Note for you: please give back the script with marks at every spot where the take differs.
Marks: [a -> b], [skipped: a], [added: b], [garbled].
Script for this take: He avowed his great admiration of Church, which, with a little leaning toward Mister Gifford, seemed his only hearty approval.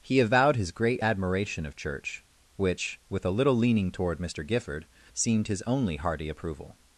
He avowed his great admiration of Church, which, with a little leaning toward Mister Gifford, seemed his only hearty approval.